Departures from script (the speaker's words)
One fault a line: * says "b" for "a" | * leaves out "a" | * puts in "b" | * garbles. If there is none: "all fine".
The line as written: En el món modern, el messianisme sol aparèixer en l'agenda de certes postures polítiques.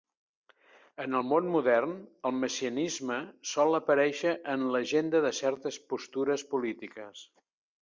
all fine